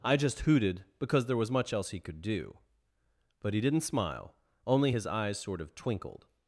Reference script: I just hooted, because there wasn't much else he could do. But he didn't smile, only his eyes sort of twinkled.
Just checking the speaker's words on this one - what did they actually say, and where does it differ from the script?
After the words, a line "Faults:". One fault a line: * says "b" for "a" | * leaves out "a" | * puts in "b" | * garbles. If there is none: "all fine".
I just hooted, because there was much else he could do. But he didn't smile, only his eyes sort of twinkled.
Faults:
* says "was" for "wasn't"